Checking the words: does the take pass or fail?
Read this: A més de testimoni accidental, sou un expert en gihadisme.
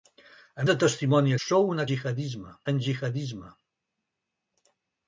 fail